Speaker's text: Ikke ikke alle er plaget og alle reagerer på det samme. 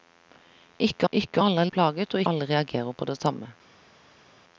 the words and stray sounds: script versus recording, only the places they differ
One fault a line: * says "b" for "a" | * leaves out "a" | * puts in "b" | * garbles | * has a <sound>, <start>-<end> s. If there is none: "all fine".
all fine